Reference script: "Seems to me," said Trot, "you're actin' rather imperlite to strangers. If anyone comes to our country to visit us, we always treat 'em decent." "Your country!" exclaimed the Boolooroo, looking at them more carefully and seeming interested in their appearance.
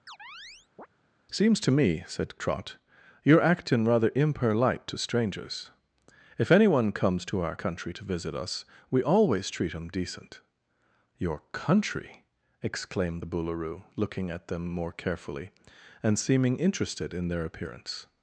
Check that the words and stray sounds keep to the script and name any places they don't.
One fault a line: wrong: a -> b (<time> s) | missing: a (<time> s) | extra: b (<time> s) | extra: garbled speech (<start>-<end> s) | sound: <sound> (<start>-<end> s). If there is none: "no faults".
sound: chirp (0.1-0.9 s)